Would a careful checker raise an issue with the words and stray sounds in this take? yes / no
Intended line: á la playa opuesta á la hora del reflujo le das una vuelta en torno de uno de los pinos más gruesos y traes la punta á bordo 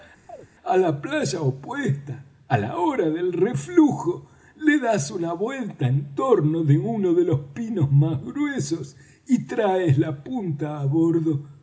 yes